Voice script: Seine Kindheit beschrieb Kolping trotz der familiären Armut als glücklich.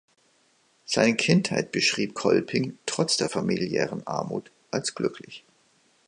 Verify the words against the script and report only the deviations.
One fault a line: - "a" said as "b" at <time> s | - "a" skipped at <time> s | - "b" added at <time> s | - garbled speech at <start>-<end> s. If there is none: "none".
none